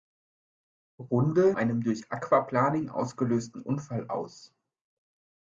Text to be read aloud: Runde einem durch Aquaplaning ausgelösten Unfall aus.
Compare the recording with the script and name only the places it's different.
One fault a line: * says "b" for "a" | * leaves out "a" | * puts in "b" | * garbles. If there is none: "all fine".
all fine